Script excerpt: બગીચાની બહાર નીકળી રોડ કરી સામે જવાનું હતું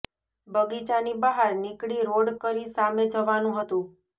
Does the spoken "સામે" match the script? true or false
true